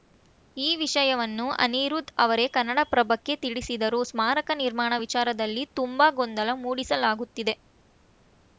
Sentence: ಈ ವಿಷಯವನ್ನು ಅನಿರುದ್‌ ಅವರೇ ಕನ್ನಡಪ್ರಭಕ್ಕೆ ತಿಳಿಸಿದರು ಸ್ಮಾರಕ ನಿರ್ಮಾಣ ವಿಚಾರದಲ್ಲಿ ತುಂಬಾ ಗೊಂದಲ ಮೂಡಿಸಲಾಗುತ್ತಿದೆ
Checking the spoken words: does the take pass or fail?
pass